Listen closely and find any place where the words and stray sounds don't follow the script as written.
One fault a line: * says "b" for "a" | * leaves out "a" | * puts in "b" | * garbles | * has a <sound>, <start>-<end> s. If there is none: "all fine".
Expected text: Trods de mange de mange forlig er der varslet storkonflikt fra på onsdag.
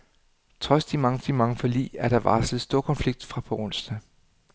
all fine